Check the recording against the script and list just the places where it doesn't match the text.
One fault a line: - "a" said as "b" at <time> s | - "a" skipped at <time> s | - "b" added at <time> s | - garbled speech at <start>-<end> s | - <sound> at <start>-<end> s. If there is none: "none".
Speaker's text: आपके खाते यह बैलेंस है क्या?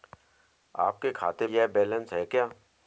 none